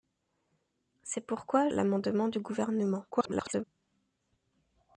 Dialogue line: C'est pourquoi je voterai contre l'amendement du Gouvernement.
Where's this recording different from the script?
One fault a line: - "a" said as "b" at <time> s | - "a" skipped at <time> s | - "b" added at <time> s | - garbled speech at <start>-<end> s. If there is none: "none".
- "je voterai contre" skipped at 1.7 s
- garbled speech at 3.1-3.6 s